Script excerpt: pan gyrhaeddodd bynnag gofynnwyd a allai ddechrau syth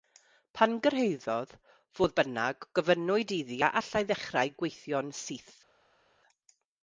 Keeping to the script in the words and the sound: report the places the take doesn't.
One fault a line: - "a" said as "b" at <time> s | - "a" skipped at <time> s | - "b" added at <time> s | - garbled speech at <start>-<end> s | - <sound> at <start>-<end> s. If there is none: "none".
- "fodd" added at 2.0 s
- "iddi" added at 3.4 s
- "gweithio'n" added at 4.6 s